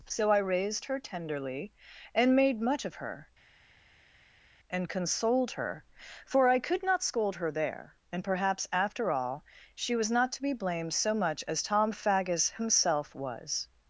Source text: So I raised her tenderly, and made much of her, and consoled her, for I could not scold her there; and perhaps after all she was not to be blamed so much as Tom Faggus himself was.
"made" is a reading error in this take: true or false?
false